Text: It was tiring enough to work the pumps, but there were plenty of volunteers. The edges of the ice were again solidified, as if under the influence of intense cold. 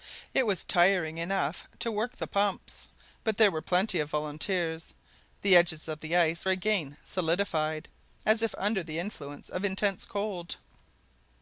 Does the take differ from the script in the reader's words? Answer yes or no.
yes